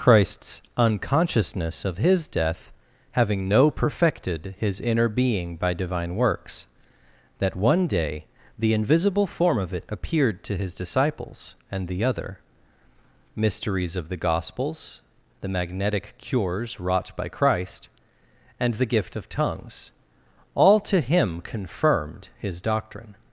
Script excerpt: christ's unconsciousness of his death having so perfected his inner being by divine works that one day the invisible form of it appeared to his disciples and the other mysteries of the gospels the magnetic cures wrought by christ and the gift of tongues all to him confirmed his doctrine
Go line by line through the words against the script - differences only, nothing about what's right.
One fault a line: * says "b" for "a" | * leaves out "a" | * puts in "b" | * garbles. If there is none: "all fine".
* says "no" for "so"